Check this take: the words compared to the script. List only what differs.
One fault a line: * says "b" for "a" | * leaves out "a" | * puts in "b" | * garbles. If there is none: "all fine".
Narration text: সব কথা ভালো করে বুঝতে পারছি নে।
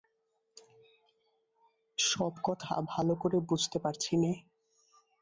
all fine